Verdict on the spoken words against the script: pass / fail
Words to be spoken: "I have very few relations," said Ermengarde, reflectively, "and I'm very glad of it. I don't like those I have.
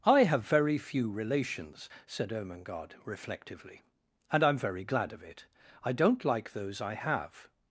pass